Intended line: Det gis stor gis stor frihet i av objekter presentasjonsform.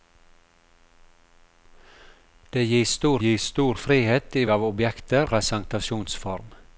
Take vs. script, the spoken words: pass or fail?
pass